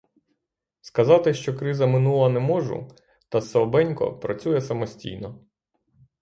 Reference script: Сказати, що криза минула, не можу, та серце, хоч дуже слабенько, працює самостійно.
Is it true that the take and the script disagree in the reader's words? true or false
true